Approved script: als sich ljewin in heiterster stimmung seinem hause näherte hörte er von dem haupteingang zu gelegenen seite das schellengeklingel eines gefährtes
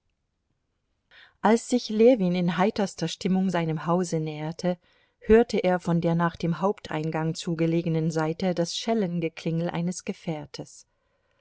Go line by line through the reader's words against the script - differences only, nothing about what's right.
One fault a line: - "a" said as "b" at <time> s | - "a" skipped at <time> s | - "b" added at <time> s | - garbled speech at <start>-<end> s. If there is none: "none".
- "der nach" added at 6.0 s